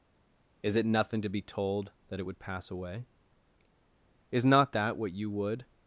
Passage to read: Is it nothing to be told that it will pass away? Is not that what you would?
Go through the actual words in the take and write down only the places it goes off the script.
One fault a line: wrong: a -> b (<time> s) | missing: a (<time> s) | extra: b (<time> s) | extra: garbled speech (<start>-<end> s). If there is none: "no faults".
wrong: will -> would (2.2 s)